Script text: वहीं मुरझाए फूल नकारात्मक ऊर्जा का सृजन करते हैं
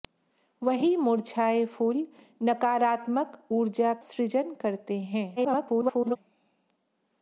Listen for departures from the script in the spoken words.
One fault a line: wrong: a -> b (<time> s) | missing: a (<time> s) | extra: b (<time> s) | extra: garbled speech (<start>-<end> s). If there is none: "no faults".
missing: का (3.9 s)
extra: garbled speech (5.4-6.2 s)